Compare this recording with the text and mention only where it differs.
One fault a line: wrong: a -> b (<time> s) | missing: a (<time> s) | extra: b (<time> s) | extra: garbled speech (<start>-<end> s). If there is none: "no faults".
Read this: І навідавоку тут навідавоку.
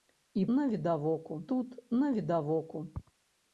no faults